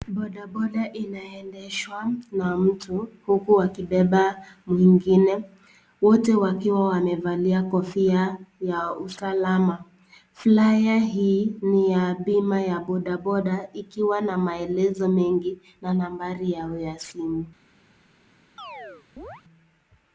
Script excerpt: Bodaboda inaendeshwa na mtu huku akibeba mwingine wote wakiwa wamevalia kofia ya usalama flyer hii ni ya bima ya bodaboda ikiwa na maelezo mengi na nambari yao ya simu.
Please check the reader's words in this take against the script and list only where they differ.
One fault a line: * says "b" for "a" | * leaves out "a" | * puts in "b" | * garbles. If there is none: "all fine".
all fine